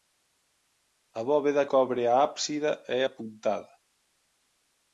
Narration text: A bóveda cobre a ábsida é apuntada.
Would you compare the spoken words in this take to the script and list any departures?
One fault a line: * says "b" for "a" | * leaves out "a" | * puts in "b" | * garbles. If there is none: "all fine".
all fine